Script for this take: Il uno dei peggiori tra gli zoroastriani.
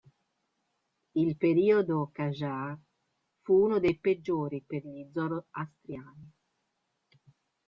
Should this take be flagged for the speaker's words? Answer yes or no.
yes